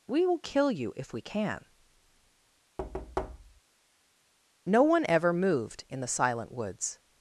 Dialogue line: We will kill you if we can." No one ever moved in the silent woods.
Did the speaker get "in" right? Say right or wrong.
right